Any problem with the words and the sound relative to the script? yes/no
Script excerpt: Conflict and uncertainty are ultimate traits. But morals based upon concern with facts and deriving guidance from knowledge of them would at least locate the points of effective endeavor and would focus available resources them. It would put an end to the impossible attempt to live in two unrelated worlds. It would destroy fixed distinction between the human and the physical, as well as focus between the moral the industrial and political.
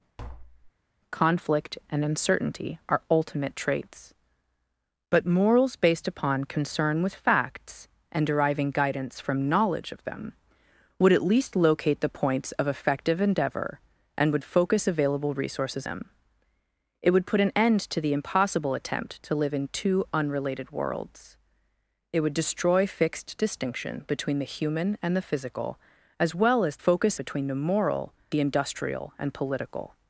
yes